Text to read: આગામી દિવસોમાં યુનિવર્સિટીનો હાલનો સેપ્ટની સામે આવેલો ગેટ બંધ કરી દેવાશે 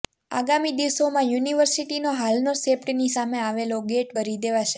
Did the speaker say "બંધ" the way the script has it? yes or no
no